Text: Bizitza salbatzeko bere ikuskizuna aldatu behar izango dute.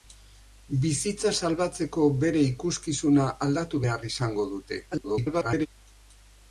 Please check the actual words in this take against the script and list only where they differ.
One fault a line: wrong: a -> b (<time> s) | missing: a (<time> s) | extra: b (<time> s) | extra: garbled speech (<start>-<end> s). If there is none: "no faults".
extra: garbled speech (4.9-5.7 s)